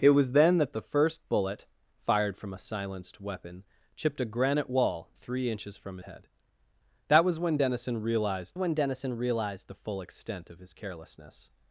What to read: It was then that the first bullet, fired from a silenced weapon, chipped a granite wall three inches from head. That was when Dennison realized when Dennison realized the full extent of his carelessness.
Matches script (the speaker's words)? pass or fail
pass